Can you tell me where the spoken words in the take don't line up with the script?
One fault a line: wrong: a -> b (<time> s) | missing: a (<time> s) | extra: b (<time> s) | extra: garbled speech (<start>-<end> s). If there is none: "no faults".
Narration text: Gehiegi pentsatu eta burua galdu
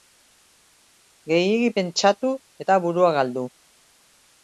no faults